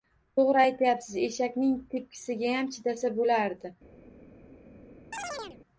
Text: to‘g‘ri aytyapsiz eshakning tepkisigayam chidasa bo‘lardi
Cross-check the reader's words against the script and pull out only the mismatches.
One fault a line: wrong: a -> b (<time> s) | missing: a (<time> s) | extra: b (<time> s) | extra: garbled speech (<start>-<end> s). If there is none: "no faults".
no faults